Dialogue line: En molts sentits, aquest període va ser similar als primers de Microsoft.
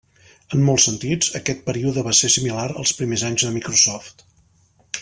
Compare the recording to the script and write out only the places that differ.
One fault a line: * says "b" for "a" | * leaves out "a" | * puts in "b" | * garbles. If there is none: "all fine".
* puts in "anys"